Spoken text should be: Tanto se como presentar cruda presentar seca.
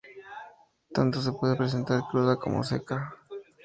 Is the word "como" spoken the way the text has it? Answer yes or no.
no